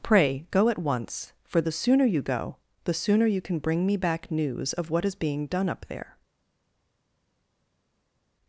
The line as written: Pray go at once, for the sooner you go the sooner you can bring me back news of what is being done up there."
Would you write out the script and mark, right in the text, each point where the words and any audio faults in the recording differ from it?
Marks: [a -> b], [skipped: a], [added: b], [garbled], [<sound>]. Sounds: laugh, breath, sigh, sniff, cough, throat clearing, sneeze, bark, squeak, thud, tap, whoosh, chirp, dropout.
Pray go at once, for the sooner you go the sooner you can bring me back news of what is being done up there."